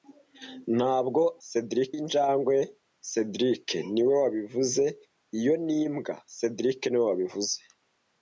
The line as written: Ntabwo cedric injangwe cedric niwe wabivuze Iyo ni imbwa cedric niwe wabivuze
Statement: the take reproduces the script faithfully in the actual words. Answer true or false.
true